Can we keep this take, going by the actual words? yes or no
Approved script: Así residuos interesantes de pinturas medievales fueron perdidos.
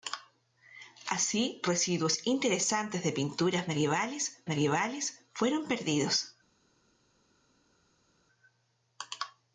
no